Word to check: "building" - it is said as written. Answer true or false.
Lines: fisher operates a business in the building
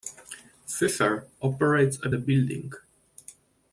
true